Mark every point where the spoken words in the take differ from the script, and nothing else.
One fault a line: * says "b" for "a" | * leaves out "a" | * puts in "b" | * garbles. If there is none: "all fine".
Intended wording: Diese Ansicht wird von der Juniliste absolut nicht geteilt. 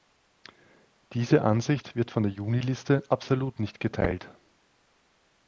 all fine